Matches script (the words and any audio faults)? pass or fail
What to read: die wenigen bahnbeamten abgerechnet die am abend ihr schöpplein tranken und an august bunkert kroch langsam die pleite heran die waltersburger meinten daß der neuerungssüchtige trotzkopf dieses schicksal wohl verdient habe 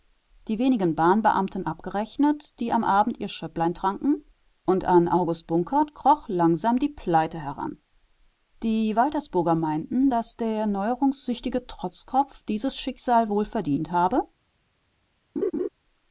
fail